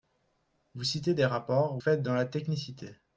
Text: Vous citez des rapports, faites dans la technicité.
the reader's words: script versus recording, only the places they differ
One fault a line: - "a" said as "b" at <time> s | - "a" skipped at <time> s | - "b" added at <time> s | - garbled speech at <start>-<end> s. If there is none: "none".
none